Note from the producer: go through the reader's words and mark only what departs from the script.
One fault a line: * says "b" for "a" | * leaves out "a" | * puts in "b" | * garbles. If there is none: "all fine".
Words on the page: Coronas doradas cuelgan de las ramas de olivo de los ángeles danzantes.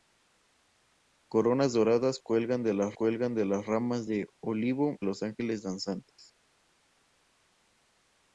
* puts in "cuelgan de las"
* leaves out "de"